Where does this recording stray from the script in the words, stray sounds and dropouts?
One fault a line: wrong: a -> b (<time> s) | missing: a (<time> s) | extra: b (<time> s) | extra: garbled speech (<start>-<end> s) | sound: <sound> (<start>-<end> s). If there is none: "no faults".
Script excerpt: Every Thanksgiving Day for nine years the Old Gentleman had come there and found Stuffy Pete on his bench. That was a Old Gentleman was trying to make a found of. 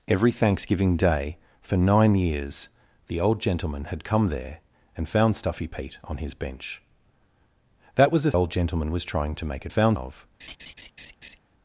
sound: laugh (10.4-11.4 s)